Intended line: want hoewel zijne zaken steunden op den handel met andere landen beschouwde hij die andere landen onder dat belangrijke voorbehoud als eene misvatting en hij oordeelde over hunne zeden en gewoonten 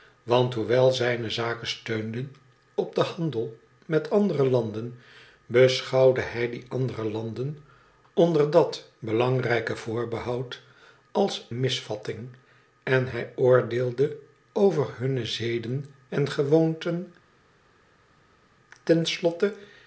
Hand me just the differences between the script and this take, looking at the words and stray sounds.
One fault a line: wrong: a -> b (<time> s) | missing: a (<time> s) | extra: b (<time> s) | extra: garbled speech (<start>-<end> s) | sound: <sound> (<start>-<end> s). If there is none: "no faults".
missing: eene (11.5 s)